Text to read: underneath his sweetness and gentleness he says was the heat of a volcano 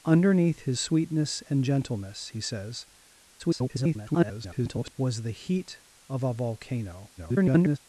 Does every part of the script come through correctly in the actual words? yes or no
no